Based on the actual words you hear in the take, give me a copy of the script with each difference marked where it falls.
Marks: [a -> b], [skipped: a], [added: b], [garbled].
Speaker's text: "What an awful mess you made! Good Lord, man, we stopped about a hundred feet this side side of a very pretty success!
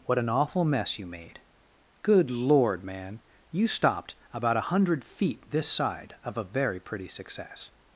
"What an awful mess you made! Good Lord, man, [we -> you] stopped about a hundred feet this side [skipped: side] of a very pretty success!